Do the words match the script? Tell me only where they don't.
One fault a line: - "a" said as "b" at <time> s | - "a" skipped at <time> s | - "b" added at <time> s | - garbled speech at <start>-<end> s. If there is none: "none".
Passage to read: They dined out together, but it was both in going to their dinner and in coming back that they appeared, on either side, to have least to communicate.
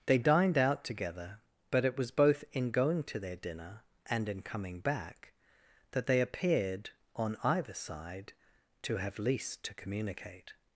none